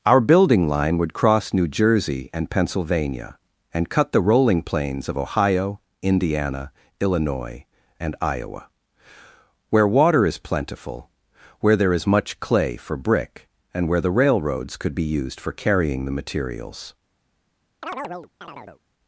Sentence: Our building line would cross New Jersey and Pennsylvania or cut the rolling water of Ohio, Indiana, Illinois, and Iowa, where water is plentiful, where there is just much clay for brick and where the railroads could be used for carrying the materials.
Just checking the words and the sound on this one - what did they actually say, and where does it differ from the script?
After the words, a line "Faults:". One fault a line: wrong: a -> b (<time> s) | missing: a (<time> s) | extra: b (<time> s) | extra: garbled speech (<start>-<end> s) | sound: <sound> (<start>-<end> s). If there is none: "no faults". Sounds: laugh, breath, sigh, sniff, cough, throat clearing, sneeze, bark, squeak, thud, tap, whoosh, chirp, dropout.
Our building line would cross New Jersey and Pennsylvania and cut the rolling plains of Ohio, Indiana, Illinois, and Iowa, where water is plentiful, where there is much clay for brick and where the railroads could be used for carrying the materials.
Faults:
wrong: or -> and (3.7 s)
wrong: water -> plains (4.6 s)
missing: just (12.1 s)
sound: chirp (17.8-18.8 s)